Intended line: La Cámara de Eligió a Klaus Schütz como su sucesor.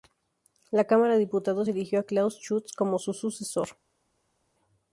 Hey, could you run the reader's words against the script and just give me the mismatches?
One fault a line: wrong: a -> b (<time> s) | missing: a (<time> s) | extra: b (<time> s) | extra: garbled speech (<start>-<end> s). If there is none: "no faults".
extra: Diputados (1.2 s)